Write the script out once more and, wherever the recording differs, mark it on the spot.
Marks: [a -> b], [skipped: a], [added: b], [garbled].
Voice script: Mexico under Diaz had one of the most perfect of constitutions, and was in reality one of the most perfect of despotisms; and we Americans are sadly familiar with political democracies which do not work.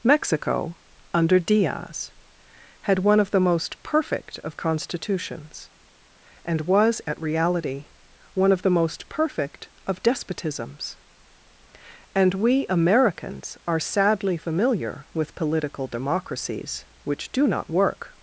Mexico under Diaz had one of the most perfect of constitutions, and was [in -> at] reality one of the most perfect of despotisms; and we Americans are sadly familiar with political democracies which do not work.